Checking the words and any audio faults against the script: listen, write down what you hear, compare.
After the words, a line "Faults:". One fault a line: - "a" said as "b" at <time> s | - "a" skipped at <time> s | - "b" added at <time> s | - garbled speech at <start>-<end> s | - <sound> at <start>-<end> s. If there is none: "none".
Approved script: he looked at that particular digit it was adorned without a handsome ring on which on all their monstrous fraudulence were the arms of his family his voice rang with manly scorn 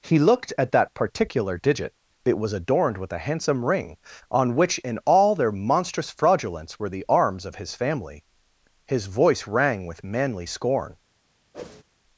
he looked at that particular digit it was adorned with a handsome ring on which in all their monstrous fraudulence were the arms of his family his voice rang with manly scorn
Faults:
- "without" said as "with" at 3.0 s
- "on" said as "in" at 4.8 s
- whoosh at 11.5-11.8 s